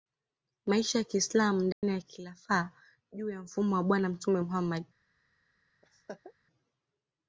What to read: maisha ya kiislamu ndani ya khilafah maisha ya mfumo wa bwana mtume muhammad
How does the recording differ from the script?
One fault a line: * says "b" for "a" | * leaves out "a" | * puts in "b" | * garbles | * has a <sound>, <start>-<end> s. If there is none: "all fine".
* has a dropout, 1.7-1.8 s
* says "juu" for "maisha"
* has a laugh, 5.8-6.3 s